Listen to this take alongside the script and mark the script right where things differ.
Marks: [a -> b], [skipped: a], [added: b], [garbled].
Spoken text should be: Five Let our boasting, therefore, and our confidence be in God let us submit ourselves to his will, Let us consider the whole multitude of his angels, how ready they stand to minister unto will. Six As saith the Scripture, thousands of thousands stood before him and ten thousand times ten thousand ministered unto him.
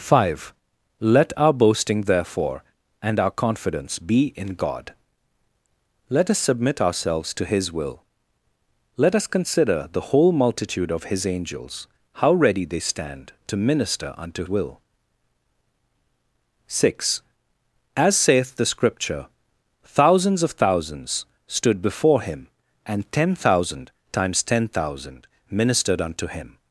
Five Let our boasting, therefore, and our confidence be in God let us submit ourselves to his will, Let us consider the whole multitude of his angels, how ready they stand to minister unto will. Six As saith the Scripture, thousands of thousands stood before him and ten thousand times ten thousand ministered unto him.